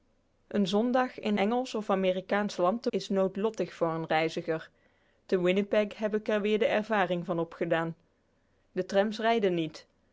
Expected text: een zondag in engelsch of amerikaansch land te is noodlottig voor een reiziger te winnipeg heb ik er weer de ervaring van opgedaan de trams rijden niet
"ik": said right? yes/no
yes